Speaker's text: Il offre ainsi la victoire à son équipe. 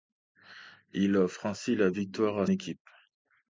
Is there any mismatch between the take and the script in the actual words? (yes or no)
yes